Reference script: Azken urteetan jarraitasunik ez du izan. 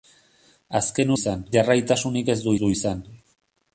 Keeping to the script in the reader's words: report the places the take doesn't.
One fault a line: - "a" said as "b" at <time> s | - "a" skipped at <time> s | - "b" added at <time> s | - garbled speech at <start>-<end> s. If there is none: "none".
- "urteetan" said as "izan" at 1.2 s
- "du" added at 2.6 s